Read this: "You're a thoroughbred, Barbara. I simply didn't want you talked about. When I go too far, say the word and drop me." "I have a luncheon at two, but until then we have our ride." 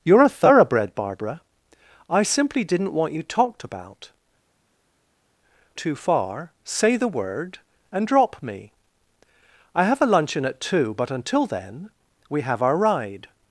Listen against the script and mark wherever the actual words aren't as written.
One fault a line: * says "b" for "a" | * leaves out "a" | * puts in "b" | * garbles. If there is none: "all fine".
* leaves out "When I go"